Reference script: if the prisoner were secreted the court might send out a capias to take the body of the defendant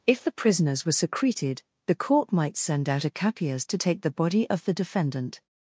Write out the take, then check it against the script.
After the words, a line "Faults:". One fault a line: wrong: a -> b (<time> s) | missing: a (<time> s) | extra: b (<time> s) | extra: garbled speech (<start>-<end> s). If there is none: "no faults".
if the prisoners were secreted the court might send out a capias to take the body of the defendant
Faults:
wrong: prisoner -> prisoners (0.3 s)